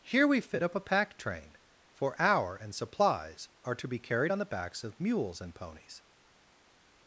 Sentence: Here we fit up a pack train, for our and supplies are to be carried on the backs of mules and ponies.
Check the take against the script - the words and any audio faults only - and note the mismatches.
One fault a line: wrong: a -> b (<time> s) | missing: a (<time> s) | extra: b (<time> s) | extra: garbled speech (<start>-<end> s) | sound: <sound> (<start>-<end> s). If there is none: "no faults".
no faults